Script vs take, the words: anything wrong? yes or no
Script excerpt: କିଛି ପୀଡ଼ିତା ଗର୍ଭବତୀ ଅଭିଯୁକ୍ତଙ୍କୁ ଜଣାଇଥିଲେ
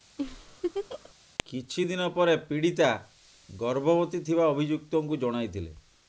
yes